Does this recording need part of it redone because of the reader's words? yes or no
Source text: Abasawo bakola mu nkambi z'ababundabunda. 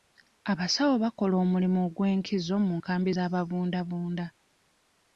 yes